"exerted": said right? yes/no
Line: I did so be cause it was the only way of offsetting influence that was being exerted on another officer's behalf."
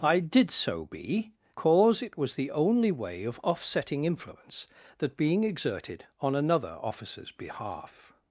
yes